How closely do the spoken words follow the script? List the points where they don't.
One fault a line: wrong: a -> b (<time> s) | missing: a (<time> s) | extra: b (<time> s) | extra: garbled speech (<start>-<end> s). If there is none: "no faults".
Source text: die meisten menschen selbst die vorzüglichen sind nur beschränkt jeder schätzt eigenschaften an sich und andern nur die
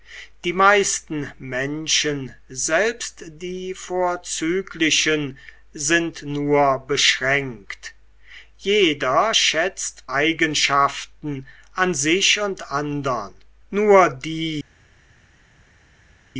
no faults